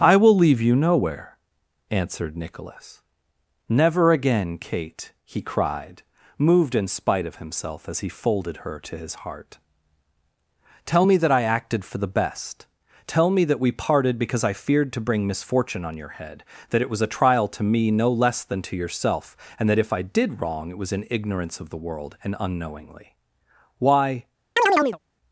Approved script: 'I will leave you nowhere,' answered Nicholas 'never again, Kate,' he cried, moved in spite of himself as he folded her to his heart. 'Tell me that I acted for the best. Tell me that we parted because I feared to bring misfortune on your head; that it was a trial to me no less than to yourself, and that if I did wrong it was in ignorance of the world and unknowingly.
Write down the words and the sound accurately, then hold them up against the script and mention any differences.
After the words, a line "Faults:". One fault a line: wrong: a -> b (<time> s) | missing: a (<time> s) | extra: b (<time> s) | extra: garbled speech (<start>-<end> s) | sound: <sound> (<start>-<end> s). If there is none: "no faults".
'I will leave you nowhere,' answered Nicholas 'never again, Kate,' he cried, moved in spite of himself as he folded her to his heart. 'Tell me that I acted for the best. Tell me that we parted because I feared to bring misfortune on your head; that it was a trial to me no less than to yourself, and that if I did wrong it was in ignorance of the world and unknowingly. 'Why
Faults:
extra: Why (23.8 s)
sound: chirp (24.6-25.0 s)